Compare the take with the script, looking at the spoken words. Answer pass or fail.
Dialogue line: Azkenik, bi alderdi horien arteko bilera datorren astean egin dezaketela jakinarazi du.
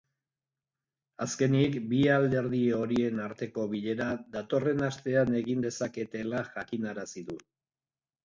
pass